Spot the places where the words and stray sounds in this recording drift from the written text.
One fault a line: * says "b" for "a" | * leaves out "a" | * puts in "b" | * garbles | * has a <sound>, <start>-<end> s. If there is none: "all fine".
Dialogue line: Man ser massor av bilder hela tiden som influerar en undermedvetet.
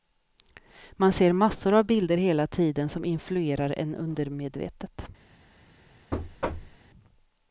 * has a thud, 6.1-6.8 s